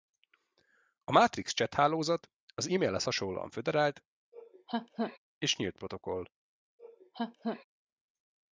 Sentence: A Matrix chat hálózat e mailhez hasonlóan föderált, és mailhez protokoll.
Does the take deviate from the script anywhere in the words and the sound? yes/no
yes